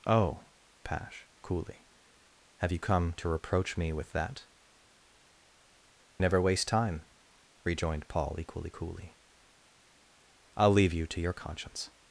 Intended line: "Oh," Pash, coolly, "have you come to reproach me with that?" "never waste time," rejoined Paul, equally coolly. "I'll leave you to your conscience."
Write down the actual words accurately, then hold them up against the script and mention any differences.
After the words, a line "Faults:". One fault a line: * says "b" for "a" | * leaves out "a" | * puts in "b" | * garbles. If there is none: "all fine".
"Oh," Pash, coolly, "have you come to reproach me with that?" "never waste time," rejoined Paul, equally coolly. "I'll leave you to your conscience."
Faults:
all fine